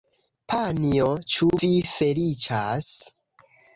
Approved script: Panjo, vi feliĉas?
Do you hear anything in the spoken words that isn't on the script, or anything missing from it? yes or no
yes